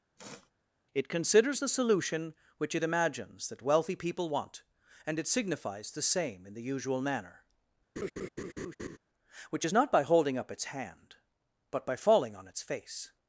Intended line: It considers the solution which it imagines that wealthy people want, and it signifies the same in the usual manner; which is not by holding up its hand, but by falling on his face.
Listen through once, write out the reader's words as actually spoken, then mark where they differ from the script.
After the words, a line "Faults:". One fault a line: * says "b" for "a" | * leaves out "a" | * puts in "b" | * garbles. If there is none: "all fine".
It considers the solution which it imagines that wealthy people want, and it signifies the same in the usual manner; which is not by holding up its hand, but by falling on its face.
Faults:
* says "its" for "his"